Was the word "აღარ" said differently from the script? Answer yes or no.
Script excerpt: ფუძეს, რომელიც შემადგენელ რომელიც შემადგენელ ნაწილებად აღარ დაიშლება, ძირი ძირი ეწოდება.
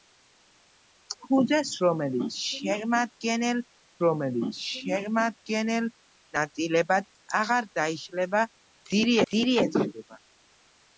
no